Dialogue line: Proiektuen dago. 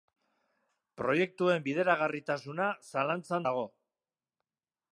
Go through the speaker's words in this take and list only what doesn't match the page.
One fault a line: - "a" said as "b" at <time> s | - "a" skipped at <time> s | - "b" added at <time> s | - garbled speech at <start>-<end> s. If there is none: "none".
- "bideragarritasuna zalantzan" added at 1.7 s